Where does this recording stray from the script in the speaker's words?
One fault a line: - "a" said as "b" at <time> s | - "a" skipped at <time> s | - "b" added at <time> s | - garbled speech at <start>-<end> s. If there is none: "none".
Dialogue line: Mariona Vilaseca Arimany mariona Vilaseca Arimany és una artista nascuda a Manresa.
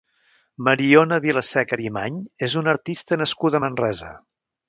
- "mariona Vilaseca Arimany" skipped at 2.2 s